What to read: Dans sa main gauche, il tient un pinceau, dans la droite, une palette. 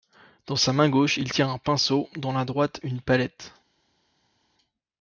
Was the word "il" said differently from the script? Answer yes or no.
no